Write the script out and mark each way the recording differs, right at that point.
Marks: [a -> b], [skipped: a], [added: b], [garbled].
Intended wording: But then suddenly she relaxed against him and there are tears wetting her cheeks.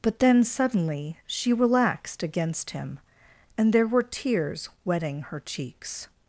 But then suddenly she relaxed against him and there [are -> were] tears wetting her cheeks.